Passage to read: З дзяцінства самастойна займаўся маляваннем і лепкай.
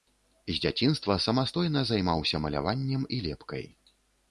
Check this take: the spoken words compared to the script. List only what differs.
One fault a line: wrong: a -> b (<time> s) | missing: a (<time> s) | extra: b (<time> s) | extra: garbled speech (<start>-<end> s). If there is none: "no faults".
no faults